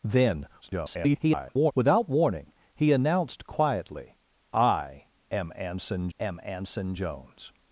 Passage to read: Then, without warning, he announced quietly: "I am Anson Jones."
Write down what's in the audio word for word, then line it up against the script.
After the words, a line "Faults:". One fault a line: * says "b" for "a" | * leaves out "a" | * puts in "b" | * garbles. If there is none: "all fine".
Then, [garbled] without warning, he announced quietly: "I am Anson am Anson Jones."
Faults:
* garbles
* puts in "am Anson"